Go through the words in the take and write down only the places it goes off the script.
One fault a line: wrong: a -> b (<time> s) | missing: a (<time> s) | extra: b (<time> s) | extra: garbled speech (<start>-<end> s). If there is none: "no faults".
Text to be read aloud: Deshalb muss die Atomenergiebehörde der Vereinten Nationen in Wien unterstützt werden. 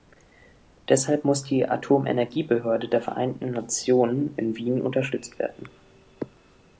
no faults